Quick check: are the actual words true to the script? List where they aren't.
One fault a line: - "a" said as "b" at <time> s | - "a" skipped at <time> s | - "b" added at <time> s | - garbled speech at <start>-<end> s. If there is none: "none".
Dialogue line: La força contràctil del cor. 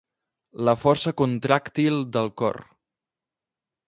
none